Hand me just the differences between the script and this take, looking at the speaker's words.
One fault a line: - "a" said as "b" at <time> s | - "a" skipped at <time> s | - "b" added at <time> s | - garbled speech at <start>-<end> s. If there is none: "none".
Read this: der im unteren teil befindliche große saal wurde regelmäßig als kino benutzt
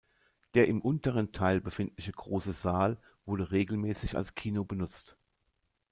none